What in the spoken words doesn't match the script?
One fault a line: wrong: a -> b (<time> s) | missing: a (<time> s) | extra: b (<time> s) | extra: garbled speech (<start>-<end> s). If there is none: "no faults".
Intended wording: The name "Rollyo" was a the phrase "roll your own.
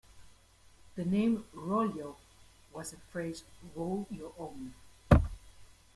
no faults